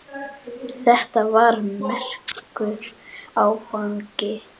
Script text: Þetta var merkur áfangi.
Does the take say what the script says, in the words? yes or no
yes